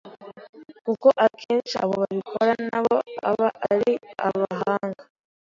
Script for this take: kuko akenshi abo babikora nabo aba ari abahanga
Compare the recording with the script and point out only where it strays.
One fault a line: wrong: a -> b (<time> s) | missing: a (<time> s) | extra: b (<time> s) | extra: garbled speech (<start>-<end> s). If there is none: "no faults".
no faults